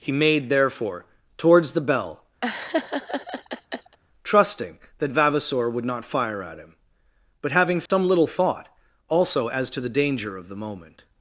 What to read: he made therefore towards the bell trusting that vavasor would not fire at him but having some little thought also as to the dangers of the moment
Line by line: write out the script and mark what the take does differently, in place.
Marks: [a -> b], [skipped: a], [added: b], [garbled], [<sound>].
he made therefore towards the bell [laugh] trusting that vavasor would not fire at him but having some [dropout] little thought also as to the [dangers -> danger] of the moment